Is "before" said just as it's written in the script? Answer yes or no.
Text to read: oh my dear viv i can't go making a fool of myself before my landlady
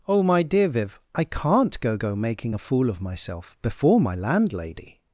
yes